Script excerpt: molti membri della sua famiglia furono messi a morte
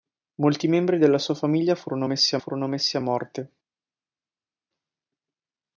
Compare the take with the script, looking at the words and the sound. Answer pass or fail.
fail